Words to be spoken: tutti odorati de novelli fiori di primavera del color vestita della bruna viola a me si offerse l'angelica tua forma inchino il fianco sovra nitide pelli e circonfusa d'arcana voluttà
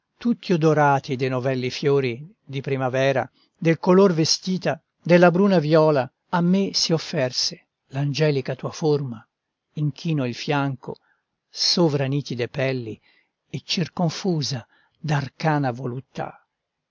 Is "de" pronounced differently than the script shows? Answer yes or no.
no